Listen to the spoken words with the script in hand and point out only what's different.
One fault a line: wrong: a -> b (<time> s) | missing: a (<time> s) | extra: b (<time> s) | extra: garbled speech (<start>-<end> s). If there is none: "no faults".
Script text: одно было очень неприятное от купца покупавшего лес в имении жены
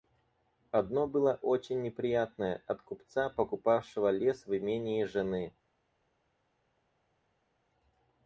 no faults